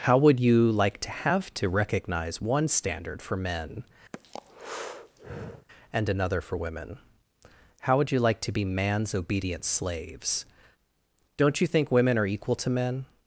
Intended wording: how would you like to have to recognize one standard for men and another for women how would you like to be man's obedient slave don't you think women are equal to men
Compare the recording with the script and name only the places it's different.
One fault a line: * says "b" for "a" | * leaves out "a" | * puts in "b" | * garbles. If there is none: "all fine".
* says "slaves" for "slave"